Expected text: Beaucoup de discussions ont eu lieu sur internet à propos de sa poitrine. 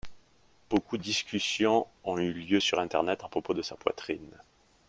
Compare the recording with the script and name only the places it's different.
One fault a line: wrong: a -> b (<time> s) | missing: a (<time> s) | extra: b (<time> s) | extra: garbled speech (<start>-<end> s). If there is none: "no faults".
missing: de (1.0 s)